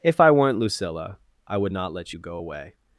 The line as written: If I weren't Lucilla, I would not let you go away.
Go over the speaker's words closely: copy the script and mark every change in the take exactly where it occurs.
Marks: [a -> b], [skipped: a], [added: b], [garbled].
If I weren't Lucilla, I would not let you go away.